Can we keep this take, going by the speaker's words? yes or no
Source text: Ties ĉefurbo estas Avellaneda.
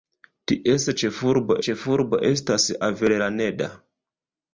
no